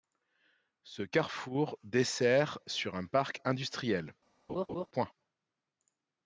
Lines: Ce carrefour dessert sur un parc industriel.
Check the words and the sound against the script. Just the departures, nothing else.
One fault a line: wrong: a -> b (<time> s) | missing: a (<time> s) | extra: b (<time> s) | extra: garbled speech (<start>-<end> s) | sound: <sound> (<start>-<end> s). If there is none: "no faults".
sound: laugh (4.5-4.9 s)